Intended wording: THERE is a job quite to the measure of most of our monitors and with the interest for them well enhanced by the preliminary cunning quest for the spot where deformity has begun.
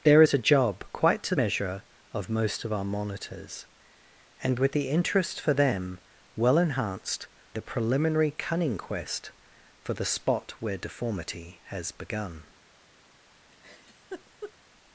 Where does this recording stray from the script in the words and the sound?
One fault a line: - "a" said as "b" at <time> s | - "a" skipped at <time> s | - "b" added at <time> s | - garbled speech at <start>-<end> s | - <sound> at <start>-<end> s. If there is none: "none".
- "the" skipped at 1.3 s
- "by" skipped at 7.3 s
- laugh at 13.5-14.5 s